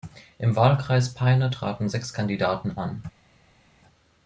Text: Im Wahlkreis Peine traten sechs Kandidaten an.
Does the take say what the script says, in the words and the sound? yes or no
yes